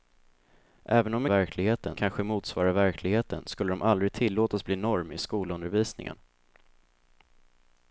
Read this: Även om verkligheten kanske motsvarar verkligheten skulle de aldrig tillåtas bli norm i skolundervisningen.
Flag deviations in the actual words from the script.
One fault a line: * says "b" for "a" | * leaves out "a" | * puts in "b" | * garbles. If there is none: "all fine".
all fine